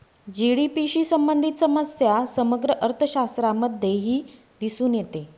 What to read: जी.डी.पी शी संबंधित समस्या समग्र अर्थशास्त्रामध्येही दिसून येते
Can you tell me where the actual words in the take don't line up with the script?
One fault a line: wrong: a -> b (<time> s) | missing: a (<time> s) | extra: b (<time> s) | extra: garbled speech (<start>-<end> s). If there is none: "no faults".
no faults